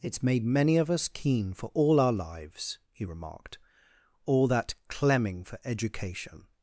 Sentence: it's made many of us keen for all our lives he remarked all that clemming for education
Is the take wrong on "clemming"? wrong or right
right